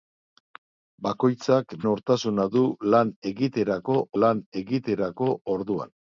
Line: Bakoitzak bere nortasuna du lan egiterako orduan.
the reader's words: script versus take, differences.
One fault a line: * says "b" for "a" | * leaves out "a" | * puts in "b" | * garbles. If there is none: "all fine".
* leaves out "bere"
* puts in "lan egiterako"